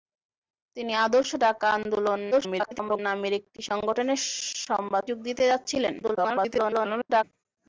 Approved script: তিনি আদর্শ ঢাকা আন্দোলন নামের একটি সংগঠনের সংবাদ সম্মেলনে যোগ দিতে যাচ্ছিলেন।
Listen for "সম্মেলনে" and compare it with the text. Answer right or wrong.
wrong